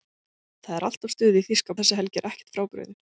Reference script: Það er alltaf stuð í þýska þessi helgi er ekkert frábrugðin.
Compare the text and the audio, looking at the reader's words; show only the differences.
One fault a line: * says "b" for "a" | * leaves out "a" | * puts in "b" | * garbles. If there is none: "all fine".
all fine